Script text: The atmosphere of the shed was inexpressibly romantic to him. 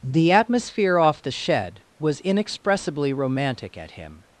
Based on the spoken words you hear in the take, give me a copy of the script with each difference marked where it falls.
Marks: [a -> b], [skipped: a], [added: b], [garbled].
The atmosphere [of -> off] the shed was inexpressibly romantic [to -> at] him.